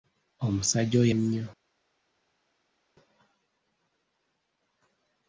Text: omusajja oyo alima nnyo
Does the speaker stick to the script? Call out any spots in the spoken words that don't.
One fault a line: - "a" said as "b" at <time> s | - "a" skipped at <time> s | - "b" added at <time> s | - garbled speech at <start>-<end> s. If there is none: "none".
- "alima" skipped at 1.1 s